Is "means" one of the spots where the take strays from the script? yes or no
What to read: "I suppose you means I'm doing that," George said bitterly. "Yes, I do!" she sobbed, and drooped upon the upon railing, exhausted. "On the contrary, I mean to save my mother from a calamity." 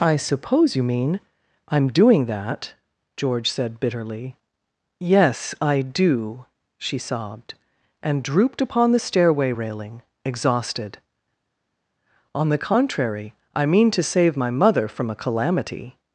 yes